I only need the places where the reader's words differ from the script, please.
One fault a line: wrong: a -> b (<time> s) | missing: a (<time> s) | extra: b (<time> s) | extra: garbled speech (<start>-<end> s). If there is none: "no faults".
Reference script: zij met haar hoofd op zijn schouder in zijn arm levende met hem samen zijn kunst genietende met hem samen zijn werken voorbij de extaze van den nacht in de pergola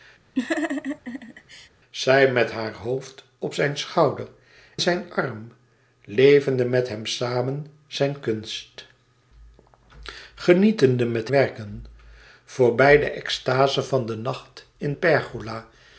missing: in (4.3 s)
missing: hem samen zijn (11.3 s)
missing: de (14.9 s)